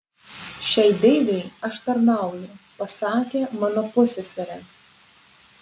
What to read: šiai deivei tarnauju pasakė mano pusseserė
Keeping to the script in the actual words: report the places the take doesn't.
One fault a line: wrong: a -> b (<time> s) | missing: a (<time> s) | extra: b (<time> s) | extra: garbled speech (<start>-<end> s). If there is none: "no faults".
extra: aš (1.7 s)